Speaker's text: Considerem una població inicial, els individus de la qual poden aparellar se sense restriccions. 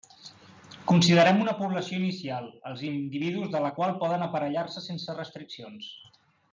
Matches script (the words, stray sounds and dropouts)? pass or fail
pass